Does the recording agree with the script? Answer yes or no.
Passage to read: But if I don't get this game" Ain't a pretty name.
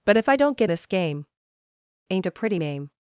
yes